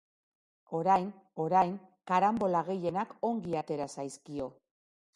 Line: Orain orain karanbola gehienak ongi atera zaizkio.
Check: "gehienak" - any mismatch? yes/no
no